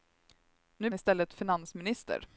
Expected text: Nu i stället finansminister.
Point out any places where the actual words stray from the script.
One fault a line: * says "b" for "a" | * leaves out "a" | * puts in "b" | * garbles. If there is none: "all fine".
all fine